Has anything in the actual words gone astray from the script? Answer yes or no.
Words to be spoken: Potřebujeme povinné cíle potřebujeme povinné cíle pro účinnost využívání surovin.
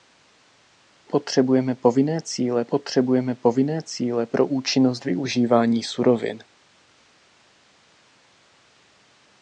no